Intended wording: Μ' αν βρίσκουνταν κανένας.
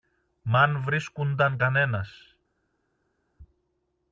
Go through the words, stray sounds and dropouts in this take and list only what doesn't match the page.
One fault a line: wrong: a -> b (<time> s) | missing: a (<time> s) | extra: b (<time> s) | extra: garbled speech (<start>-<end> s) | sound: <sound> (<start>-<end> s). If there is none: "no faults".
no faults